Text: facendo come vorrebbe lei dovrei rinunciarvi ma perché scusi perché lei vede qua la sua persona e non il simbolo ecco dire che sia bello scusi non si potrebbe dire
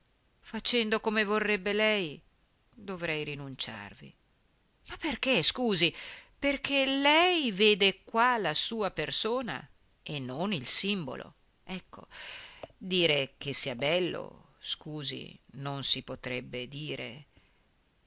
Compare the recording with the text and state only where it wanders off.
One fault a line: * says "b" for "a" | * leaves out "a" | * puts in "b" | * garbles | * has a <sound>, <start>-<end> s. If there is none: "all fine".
all fine